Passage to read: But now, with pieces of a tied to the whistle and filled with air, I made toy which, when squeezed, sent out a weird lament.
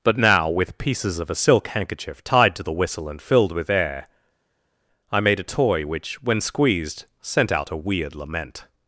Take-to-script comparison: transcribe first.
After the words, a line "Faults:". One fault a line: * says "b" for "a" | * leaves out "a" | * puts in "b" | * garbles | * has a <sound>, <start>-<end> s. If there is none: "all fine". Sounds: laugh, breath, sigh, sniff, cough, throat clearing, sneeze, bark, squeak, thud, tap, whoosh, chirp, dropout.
But now, with pieces of a silk handkerchief tied to the whistle and filled with air, I made a toy which, when squeezed, sent out a weird lament.
Faults:
* puts in "silk handkerchief"
* puts in "a"